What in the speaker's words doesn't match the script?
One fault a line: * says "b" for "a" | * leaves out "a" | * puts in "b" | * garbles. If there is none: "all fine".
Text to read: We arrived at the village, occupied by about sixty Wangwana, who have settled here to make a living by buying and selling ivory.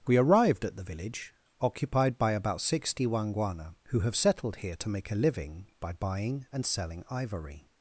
all fine